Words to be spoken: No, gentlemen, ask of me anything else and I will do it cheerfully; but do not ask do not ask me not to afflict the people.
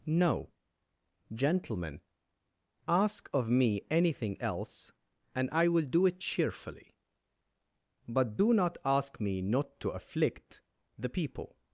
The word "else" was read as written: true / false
true